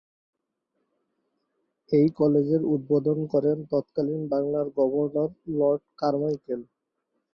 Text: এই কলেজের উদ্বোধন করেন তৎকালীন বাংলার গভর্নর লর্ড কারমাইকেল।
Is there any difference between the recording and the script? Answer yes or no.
no